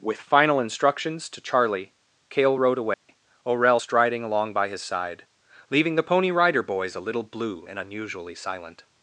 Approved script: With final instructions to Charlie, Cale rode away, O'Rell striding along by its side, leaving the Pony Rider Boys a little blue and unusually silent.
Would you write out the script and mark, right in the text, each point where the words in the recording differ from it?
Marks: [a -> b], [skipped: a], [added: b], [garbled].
With final instructions to Charlie, Cale rode away, O'Rell striding along by [its -> his] side, leaving the Pony Rider Boys a little blue and unusually silent.